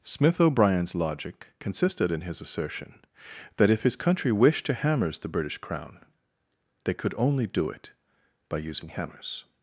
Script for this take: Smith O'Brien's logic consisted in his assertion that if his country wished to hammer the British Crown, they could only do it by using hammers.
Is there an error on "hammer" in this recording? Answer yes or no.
yes